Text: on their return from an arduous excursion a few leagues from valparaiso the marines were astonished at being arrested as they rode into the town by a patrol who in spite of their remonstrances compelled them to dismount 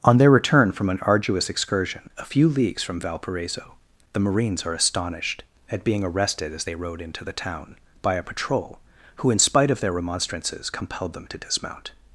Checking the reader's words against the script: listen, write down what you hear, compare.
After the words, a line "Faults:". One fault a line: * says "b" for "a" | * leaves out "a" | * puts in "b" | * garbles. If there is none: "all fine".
on their return from an arduous excursion a few leagues from valparaiso the marines are astonished at being arrested as they rode into the town by a patrol who in spite of their remonstrances compelled them to dismount
Faults:
* says "are" for "were"